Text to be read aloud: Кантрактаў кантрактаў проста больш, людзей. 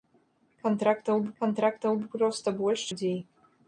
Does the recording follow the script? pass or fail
pass